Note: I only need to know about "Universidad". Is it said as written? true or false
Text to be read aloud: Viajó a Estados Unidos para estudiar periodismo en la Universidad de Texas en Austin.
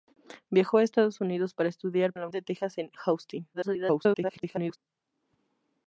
false